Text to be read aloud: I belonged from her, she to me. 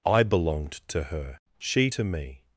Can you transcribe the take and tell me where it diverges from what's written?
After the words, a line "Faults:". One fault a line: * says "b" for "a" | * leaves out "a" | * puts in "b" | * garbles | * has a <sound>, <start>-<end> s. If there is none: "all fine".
I belonged to her, she to me.
Faults:
* says "to" for "from"